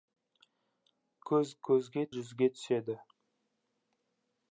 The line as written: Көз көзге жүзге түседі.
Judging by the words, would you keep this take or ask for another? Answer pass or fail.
pass